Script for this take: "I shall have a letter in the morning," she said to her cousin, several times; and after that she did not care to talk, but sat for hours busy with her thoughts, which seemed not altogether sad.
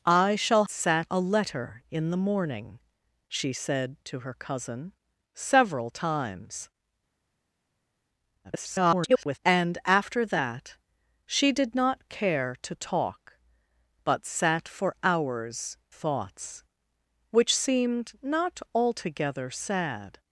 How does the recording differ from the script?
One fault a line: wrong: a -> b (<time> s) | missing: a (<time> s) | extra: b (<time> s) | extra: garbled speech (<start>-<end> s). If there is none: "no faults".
wrong: have -> sat (0.7 s)
extra: garbled speech (8.4-9.4 s)
missing: busy with her (15.8 s)